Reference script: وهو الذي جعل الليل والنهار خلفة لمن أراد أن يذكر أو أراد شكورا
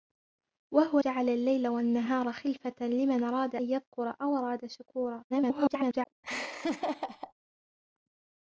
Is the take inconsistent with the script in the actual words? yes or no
yes